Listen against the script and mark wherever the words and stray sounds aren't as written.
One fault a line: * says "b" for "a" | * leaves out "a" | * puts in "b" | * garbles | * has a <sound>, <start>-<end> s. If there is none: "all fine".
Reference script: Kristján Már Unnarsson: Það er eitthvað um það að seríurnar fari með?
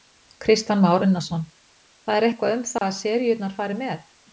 * has a dropout, 2.8-2.8 s